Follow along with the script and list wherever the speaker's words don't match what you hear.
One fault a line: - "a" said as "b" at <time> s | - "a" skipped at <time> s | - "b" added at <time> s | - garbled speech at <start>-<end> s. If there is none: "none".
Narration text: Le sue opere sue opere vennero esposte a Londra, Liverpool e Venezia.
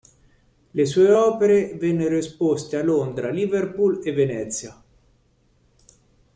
- "sue opere" skipped at 1.8 s